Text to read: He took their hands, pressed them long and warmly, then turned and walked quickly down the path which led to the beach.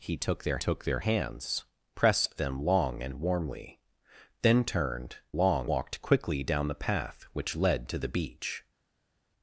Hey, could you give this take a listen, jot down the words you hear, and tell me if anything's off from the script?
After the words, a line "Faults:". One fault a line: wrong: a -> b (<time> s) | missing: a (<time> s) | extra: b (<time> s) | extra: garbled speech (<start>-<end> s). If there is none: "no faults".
He took their took their hands, pressed them long and warmly, then turned long walked quickly down the path which led to the beach.
Faults:
extra: took their (0.6 s)
wrong: and -> long (5.4 s)